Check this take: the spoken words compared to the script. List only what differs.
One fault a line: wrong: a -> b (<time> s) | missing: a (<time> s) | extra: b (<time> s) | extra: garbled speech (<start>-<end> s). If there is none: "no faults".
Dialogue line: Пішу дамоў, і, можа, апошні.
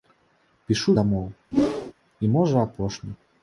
no faults